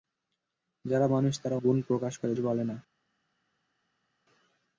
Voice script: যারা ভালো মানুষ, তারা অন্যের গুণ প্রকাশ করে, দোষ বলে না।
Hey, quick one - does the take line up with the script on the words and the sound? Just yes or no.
no